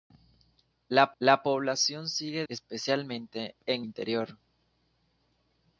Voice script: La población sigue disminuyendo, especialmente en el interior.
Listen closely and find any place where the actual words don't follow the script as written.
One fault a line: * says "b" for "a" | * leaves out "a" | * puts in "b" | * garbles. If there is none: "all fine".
* puts in "la"
* leaves out "disminuyendo"
* leaves out "el"